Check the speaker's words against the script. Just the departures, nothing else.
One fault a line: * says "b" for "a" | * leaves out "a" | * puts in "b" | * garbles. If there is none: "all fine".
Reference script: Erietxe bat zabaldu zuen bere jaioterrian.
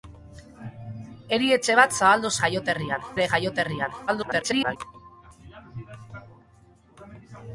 * says "jaioterrian" for "zuen"
* garbles